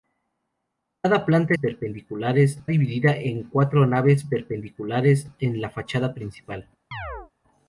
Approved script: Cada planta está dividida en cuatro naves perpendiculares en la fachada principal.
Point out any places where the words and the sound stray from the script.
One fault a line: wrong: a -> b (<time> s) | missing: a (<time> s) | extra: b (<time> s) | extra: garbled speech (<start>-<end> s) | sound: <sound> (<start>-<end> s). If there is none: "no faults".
wrong: está -> perpendiculares (1.5 s)
sound: chirp (6.9-7.3 s)